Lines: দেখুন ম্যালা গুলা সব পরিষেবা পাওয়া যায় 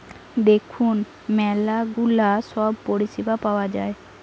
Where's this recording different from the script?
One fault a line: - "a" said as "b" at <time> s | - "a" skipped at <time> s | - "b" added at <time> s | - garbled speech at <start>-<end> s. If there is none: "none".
none